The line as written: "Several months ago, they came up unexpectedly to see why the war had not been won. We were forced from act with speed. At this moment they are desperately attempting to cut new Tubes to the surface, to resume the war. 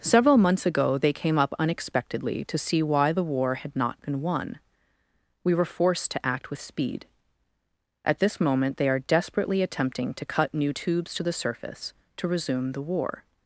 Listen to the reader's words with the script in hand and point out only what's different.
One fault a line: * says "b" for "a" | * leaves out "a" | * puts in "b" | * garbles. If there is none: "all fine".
* says "to" for "from"